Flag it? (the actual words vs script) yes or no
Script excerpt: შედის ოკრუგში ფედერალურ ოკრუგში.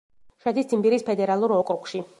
yes